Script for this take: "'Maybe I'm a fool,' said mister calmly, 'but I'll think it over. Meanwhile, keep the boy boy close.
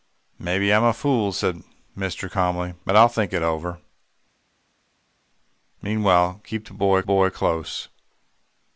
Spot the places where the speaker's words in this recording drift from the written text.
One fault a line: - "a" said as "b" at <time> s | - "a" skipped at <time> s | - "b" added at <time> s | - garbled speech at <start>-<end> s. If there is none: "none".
none